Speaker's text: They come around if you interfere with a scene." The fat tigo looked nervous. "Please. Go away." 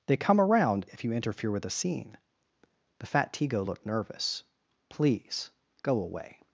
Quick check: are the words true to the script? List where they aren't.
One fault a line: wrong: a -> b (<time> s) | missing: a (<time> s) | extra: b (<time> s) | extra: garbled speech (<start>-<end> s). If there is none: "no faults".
no faults